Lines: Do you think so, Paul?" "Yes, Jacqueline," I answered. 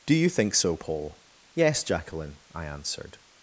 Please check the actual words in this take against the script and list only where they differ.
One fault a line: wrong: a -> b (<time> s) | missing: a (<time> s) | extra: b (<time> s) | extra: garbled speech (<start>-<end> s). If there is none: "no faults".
no faults